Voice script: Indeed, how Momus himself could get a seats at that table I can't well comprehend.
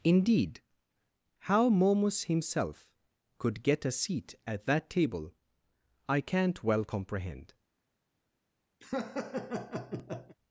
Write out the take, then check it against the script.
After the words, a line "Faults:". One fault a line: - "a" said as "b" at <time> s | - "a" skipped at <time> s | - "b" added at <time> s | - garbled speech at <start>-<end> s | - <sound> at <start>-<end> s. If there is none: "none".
Indeed, how Momus himself could get a seat at that table I can't well comprehend.
Faults:
- "seats" said as "seat" at 3.9 s
- laugh at 8.8-10.4 s